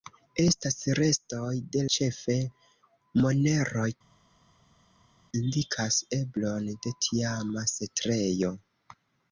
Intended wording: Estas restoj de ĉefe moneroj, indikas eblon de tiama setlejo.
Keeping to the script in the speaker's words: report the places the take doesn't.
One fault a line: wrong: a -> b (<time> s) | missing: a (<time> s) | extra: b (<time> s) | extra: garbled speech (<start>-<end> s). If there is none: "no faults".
no faults